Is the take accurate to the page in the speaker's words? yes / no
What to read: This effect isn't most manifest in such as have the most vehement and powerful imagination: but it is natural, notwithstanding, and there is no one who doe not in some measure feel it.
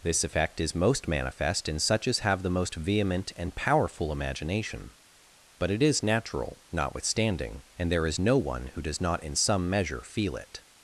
no